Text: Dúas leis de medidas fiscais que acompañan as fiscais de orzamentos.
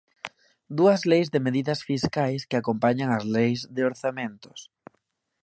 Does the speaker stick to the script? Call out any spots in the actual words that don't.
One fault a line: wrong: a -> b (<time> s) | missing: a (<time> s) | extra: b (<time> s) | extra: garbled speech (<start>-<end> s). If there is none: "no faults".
wrong: fiscais -> leis (3.4 s)